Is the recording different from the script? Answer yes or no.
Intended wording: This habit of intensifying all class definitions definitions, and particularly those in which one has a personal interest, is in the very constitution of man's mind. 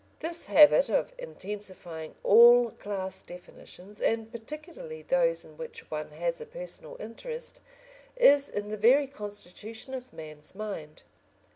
yes